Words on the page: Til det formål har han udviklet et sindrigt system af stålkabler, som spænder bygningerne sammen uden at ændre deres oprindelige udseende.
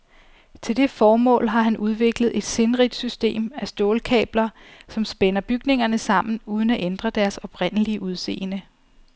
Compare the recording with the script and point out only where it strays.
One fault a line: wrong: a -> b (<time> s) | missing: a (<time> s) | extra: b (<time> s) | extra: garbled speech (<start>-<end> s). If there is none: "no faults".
no faults